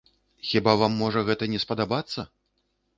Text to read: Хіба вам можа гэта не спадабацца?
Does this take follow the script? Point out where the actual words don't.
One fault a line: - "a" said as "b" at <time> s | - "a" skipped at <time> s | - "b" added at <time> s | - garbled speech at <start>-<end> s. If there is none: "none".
none